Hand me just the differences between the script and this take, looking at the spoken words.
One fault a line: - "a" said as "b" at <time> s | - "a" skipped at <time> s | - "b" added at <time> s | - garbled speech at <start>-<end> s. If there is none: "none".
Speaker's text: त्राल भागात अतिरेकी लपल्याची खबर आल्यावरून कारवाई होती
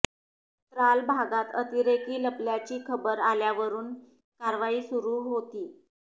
- "सुरू" added at 4.8 s